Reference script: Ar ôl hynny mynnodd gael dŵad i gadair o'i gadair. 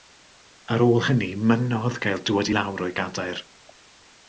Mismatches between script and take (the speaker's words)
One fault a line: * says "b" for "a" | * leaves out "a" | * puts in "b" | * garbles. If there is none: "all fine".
* says "lawr" for "gadair"